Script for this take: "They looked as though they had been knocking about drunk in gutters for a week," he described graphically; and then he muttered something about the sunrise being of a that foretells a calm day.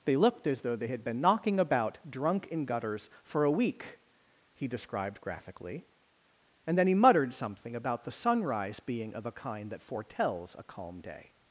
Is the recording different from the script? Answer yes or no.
yes